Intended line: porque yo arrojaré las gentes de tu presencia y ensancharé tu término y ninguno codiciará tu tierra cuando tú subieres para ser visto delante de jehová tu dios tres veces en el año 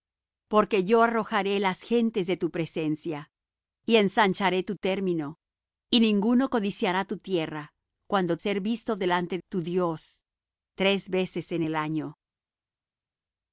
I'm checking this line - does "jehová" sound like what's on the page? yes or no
no